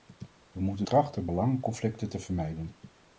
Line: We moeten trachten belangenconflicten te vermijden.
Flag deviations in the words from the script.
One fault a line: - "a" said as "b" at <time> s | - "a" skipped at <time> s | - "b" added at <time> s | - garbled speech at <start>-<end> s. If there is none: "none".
none